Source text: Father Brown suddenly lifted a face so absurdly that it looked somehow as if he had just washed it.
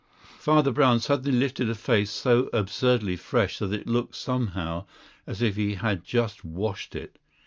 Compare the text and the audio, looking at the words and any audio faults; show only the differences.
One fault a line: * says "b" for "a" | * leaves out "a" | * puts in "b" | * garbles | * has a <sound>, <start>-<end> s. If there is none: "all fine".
* puts in "fresh"